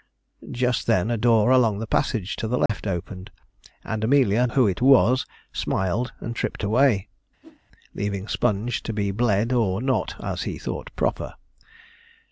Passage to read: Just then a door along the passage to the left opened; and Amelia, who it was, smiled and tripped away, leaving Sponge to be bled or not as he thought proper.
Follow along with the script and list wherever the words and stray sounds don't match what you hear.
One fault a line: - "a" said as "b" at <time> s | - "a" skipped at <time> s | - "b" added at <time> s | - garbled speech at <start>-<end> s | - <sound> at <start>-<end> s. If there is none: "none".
- dropout at 2.7-2.7 s
- whoosh at 7.4-7.6 s